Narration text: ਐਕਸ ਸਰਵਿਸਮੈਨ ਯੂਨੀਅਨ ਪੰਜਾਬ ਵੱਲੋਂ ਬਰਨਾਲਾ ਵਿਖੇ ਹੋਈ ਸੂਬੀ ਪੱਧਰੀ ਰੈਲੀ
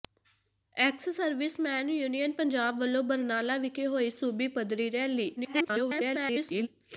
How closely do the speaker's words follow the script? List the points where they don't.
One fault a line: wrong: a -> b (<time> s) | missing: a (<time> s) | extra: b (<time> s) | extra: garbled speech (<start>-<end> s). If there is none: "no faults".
extra: garbled speech (5.4-6.7 s)